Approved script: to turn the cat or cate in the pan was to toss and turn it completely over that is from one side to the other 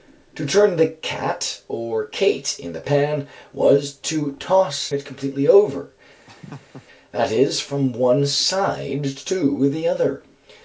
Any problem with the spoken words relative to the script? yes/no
yes